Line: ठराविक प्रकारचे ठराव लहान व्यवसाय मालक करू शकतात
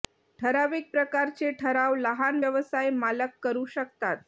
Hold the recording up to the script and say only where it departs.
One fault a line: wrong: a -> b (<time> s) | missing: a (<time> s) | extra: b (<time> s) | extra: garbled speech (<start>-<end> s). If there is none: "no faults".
no faults